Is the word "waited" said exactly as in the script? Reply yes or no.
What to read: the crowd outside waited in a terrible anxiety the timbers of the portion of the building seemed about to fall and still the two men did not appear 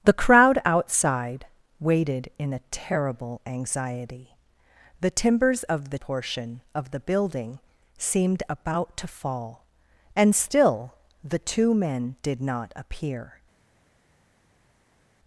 yes